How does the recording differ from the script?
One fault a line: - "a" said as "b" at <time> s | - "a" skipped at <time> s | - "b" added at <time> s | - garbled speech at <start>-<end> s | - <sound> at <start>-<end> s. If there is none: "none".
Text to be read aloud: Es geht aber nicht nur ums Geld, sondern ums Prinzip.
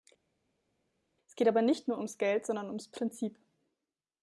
none